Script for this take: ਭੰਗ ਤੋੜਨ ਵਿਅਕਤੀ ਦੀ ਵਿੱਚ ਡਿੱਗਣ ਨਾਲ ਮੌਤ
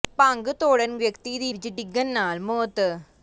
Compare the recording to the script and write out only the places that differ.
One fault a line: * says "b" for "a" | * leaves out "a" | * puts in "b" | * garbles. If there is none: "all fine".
all fine